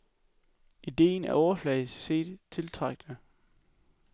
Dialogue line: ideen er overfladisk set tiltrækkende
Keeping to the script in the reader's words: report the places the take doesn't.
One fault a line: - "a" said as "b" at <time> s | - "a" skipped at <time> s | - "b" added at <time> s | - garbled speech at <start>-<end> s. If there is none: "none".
none